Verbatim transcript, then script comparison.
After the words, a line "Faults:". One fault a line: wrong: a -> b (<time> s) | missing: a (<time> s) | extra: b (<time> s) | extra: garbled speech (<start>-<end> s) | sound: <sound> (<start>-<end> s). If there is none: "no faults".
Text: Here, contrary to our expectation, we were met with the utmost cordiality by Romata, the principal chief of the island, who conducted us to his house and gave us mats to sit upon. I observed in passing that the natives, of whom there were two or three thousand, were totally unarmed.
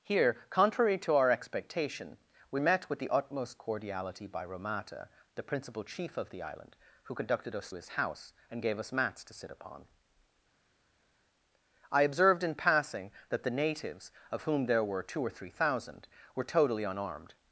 Here, contrary to our expectation, we met with the utmost cordiality by Romata, the principal chief of the island, who conducted us his house and gave us mats to sit upon. I observed in passing that the natives, of whom there were two or three thousand, were totally unarmed.
Faults:
missing: were (2.6 s)
missing: to (7.7 s)